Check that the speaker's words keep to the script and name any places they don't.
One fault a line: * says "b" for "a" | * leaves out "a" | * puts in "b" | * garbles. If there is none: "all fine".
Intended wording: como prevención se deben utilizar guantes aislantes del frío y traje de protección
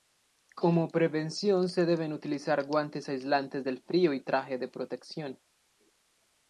all fine